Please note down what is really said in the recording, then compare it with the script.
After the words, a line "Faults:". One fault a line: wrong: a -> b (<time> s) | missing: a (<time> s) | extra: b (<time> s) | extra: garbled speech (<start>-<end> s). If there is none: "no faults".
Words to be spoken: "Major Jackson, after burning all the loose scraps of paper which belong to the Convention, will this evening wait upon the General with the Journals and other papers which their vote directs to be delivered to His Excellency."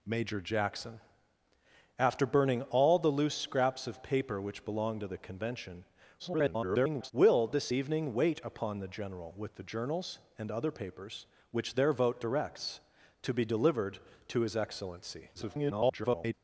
"Major Jackson, after burning all the loose scraps of paper which belong to the Convention, [garbled] will this evening wait upon the General with the Journals and other papers which their vote directs to be delivered to His Excellency." [garbled]
Faults:
extra: garbled speech (6.2-7.1 s)
extra: garbled speech (15.3-16.3 s)